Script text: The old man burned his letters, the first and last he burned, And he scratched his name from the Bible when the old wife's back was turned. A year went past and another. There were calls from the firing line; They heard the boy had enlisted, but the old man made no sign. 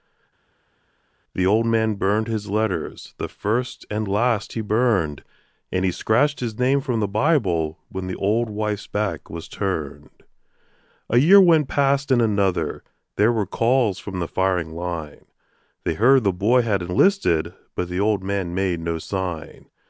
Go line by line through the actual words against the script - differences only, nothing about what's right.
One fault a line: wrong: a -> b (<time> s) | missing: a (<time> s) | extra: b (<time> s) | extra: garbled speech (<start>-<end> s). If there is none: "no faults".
no faults